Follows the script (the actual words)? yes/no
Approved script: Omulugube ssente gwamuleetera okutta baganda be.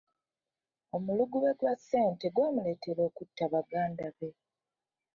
no